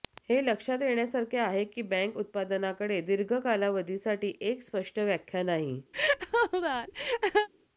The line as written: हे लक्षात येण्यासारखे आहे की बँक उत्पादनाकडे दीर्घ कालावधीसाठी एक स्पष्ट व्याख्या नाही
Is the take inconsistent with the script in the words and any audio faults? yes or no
yes